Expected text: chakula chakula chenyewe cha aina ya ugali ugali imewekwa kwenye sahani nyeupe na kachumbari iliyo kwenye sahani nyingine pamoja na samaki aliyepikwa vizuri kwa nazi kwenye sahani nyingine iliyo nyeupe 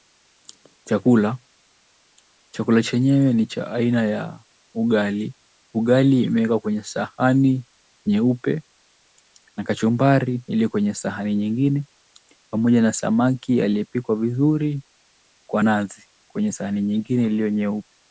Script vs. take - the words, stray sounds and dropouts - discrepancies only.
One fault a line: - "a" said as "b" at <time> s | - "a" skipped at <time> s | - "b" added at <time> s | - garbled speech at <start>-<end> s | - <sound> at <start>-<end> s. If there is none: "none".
- "ni" added at 3.3 s